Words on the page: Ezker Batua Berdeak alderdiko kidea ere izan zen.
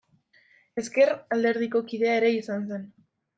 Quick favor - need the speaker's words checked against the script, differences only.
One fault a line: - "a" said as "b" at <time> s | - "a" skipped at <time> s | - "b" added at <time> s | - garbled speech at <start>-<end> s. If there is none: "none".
- "Batua Berdeak" skipped at 1.1 s